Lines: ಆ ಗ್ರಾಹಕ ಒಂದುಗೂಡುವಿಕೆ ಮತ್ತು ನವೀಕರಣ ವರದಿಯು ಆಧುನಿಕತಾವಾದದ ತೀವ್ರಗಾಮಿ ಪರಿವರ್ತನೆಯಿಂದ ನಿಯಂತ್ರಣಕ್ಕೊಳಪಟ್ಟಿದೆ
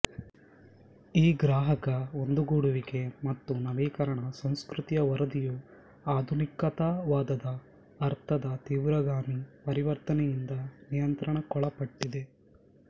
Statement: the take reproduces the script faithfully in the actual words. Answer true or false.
false